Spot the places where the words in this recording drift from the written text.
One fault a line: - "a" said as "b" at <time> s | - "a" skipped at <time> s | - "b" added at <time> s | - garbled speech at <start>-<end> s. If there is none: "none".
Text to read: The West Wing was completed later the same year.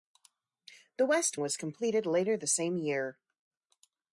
- "Wing" skipped at 1.4 s